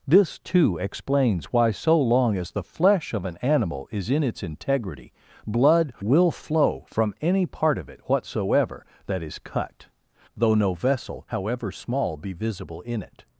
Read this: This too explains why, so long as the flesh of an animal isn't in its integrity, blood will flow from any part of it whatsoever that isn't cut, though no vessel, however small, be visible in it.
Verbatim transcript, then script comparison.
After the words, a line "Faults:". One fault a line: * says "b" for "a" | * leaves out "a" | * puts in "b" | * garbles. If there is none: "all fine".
This too explains why, so long as the flesh of an animal is in its integrity, blood will flow from any part of it whatsoever that is cut, though no vessel, however small, be visible in it.
Faults:
* says "is" for "isn't"
* says "is" for "isn't"